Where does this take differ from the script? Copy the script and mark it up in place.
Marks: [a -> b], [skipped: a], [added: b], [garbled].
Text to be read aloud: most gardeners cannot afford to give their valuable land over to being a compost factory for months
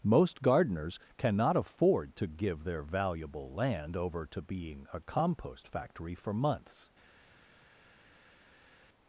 most gardeners cannot afford to give their valuable land over to being a compost factory for months